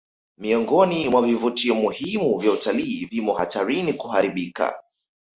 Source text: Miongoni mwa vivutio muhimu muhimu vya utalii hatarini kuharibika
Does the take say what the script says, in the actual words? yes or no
no